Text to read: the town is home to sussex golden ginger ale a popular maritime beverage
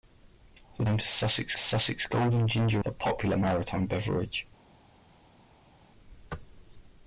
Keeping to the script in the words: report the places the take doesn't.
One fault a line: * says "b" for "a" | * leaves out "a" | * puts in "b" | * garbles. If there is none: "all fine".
* leaves out "town is"
* puts in "sussex"
* leaves out "ale"